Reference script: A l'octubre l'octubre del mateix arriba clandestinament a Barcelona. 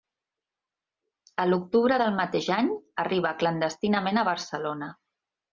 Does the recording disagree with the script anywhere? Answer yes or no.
yes